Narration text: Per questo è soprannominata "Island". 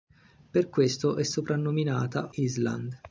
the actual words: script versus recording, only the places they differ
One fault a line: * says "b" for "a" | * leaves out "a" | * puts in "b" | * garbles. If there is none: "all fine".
all fine